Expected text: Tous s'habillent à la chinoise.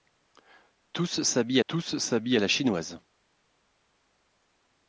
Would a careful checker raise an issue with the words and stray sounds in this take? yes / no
yes